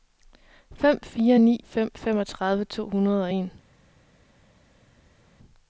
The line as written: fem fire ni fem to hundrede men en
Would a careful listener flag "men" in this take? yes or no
yes